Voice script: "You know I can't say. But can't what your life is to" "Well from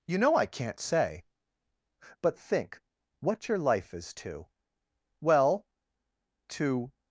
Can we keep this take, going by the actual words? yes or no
no